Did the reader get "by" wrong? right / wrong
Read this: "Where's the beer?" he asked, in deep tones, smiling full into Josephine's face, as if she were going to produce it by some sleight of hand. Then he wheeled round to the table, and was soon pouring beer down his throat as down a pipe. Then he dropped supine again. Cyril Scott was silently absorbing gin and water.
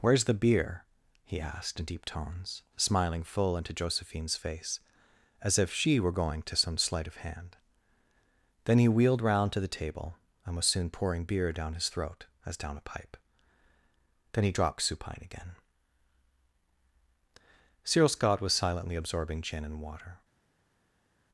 wrong